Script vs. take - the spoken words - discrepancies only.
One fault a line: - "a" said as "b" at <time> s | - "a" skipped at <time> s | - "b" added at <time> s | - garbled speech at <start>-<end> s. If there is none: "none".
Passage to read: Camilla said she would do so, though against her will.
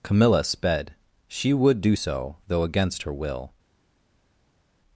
- "said" said as "sped" at 0.4 s